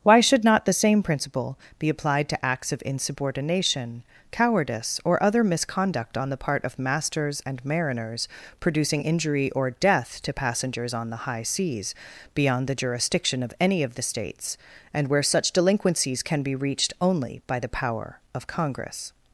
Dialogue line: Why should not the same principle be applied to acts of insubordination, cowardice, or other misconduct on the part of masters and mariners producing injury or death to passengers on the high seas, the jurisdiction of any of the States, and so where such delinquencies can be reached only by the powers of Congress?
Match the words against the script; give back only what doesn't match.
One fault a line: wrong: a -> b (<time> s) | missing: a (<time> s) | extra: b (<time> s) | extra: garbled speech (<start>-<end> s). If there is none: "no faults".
extra: beyond (12.3 s)
missing: so (15.1 s)
wrong: powers -> power (17.7 s)